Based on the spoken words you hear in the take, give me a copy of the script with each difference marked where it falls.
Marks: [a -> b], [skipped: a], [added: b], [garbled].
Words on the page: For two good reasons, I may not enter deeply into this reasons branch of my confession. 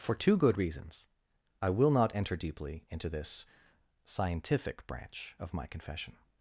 For two good reasons, I [may -> will] not enter deeply into this [reasons -> scientific] branch of my confession.